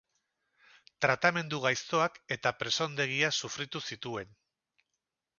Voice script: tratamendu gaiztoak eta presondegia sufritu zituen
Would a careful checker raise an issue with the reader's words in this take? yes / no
no